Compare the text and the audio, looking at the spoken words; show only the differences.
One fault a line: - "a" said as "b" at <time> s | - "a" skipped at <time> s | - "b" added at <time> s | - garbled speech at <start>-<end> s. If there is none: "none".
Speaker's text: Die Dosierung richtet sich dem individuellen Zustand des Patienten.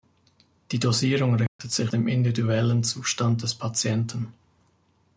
none